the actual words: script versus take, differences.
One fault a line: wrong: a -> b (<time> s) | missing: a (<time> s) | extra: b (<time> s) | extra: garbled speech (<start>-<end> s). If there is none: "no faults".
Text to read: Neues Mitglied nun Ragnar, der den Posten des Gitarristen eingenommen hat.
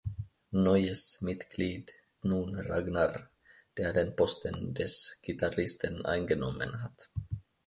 no faults